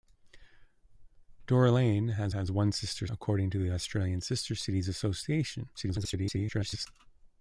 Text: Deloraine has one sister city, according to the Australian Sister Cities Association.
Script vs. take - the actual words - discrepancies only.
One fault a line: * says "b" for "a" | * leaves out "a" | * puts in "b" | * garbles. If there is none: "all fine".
* puts in "has"
* leaves out "city"
* garbles